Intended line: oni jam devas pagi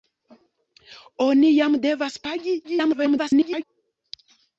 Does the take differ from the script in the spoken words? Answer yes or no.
yes